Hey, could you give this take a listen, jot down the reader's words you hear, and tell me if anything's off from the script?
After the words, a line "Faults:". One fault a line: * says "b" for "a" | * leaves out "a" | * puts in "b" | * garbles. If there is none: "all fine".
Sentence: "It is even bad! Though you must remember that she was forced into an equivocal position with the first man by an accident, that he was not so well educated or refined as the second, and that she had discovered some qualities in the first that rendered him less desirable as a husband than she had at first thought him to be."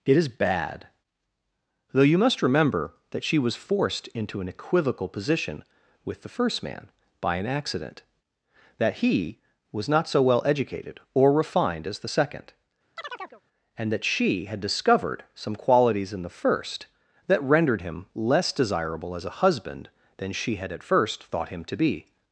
"It is bad! Though you must remember that she was forced into an equivocal position with the first man by an accident, that he was not so well educated or refined as the second, and that she had discovered some qualities in the first that rendered him less desirable as a husband than she had at first thought him to be."
Faults:
* leaves out "even"